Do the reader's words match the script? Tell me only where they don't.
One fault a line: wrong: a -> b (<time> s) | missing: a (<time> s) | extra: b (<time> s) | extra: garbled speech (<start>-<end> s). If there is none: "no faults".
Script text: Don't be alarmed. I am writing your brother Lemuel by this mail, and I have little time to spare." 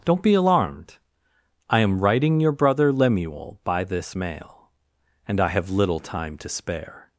no faults